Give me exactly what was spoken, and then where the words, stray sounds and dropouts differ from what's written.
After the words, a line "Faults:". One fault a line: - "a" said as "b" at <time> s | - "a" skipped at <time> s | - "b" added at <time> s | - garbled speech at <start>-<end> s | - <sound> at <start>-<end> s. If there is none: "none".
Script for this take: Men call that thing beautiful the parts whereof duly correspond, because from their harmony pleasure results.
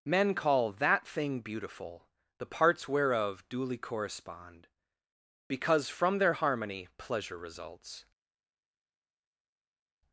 Men call that thing beautiful the parts whereof duly correspond, because from their harmony pleasure results.
Faults:
none